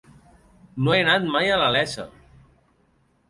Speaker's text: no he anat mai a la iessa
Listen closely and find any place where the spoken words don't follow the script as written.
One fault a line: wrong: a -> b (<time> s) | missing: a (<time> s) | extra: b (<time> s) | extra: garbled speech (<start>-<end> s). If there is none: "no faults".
no faults